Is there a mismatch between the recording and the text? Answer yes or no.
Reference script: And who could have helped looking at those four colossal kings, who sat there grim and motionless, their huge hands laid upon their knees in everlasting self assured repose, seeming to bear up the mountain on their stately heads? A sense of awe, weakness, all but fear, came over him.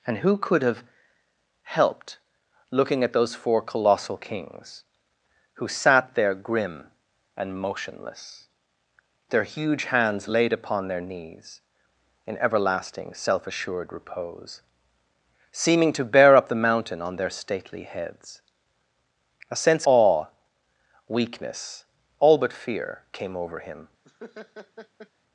yes